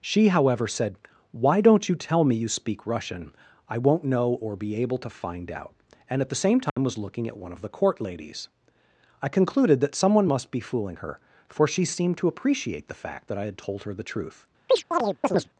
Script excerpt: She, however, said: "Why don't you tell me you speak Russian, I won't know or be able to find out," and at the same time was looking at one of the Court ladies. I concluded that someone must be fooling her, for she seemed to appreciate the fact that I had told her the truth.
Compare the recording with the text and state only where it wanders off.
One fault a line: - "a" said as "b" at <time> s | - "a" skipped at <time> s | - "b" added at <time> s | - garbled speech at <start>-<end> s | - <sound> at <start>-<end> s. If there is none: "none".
- dropout at 6.7-6.8 s
- chirp at 14.7-15.5 s